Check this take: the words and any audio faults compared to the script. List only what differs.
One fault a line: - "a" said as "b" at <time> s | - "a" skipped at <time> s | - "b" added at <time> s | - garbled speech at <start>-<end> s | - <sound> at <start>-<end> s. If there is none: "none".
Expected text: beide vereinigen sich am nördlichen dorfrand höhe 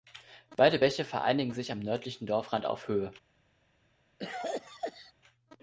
- "bäche" added at 0.8 s
- "auf" added at 2.7 s
- cough at 4.2-5.1 s